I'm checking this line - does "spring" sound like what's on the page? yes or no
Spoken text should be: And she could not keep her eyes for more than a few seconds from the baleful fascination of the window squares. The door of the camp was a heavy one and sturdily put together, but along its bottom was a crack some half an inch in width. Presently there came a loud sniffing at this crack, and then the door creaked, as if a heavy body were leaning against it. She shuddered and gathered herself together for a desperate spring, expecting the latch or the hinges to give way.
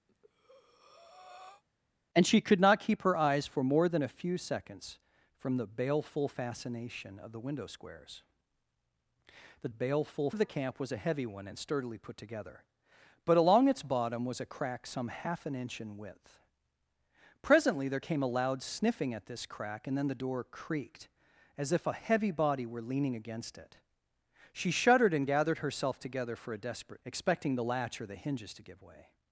no